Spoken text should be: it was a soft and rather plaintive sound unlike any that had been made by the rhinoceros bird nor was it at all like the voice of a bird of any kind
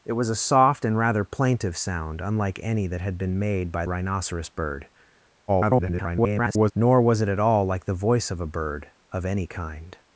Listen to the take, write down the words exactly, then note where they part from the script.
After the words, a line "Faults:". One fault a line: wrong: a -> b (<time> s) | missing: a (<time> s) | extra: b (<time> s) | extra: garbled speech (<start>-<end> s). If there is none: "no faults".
it was a soft and rather plaintive sound unlike any that had been made by rhinoceros bird [garbled] nor was it at all like the voice of a bird of any kind
Faults:
missing: the (3.9 s)
extra: garbled speech (5.5-6.7 s)